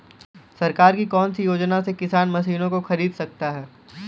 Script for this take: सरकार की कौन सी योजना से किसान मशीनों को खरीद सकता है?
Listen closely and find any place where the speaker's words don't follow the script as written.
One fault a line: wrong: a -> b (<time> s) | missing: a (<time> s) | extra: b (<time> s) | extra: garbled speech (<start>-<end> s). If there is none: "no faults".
no faults